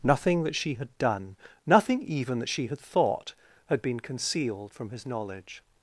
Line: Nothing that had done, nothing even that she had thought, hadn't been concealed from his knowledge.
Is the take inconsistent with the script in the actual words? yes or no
yes